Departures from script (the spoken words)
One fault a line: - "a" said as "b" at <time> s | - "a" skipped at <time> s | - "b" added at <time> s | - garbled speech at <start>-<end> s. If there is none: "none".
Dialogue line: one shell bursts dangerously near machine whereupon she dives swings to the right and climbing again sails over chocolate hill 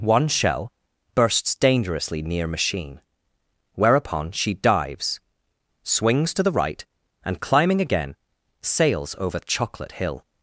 none